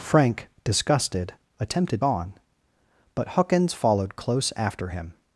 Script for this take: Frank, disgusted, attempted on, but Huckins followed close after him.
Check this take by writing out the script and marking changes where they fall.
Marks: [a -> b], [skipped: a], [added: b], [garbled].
Frank, disgusted, attempted on, but Huckins followed close after him.